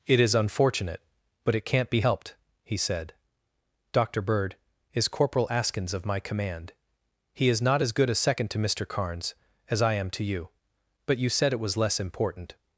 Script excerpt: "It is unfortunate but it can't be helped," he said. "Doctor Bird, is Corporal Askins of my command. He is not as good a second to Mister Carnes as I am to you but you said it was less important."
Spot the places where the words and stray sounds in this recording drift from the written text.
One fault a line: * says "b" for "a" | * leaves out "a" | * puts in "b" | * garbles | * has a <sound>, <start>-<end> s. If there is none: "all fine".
all fine